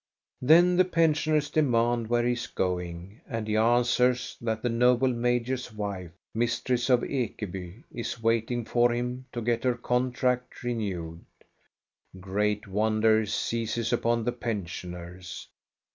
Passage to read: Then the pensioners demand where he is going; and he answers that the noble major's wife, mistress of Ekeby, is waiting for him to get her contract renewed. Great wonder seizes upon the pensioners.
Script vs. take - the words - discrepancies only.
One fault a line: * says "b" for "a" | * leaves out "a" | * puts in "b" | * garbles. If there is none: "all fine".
all fine